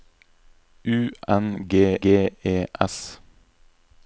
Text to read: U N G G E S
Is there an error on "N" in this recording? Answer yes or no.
no